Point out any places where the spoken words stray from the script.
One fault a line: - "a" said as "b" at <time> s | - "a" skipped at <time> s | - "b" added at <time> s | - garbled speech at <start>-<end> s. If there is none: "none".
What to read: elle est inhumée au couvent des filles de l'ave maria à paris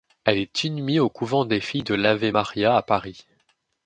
none